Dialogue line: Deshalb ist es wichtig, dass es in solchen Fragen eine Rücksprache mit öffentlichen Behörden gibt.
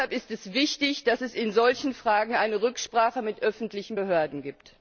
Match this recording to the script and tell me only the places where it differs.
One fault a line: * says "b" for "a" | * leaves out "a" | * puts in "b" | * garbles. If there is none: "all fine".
all fine